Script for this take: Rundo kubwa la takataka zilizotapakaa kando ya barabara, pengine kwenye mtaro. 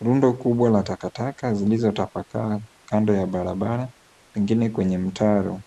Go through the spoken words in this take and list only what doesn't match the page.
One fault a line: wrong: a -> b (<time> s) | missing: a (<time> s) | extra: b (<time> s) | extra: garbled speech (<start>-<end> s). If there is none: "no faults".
no faults